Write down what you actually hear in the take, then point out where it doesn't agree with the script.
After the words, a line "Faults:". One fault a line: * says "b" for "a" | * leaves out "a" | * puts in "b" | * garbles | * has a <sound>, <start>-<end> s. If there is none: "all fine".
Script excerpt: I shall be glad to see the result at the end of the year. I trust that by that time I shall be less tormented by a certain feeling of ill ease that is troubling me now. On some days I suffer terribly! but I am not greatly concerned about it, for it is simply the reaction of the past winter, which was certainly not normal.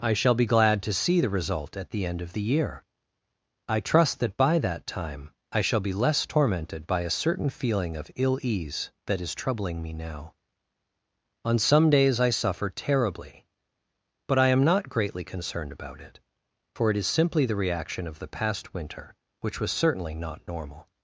I shall be glad to see the result at the end of the year. I trust that by that time I shall be less tormented by a certain feeling of ill ease that is troubling me now. On some days I suffer terribly! but I am not greatly concerned about it, for it is simply the reaction of the past winter, which was certainly not normal.
Faults:
all fine